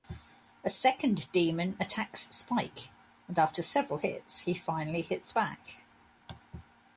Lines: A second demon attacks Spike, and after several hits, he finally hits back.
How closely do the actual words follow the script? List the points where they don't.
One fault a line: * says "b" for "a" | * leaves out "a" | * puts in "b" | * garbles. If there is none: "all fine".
all fine